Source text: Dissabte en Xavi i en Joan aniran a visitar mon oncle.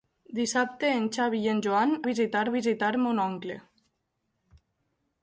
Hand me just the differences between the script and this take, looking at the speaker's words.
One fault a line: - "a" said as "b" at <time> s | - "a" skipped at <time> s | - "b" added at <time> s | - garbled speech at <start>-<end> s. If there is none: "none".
- "aniran" said as "visitar" at 2.1 s